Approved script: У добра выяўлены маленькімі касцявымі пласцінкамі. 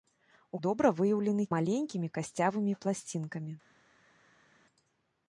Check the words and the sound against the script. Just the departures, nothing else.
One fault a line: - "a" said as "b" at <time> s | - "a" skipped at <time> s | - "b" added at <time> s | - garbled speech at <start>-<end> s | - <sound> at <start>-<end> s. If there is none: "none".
none